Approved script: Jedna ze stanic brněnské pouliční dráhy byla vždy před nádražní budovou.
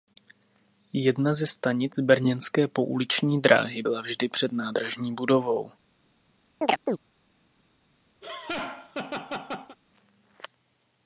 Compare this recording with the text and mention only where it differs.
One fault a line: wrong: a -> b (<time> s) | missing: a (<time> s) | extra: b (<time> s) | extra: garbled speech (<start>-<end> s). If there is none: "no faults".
no faults